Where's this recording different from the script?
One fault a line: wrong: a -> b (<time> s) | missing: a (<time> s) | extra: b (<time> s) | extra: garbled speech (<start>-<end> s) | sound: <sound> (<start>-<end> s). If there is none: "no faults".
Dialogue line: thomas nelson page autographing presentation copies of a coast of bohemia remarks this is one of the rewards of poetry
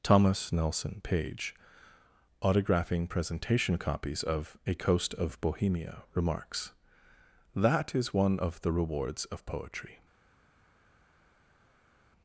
wrong: this -> that (7.5 s)